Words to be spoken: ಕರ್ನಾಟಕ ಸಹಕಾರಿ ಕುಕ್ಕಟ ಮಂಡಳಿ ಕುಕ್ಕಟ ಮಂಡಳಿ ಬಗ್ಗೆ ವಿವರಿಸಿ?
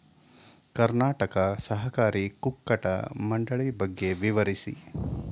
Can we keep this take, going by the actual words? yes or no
no